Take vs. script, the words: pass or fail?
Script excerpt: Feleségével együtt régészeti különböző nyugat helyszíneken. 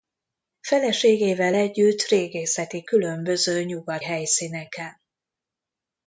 pass